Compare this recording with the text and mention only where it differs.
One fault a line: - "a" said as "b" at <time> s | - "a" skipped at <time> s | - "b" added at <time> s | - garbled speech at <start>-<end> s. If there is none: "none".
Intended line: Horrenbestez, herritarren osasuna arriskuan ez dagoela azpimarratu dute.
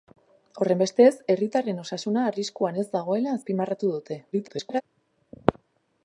- garbled speech at 4.3-4.8 s